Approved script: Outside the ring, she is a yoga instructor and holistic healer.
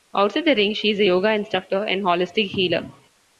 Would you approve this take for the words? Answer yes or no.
yes